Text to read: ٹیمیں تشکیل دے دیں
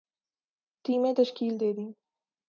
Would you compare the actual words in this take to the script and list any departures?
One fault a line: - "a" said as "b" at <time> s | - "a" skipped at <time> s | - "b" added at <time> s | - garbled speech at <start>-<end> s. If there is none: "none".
none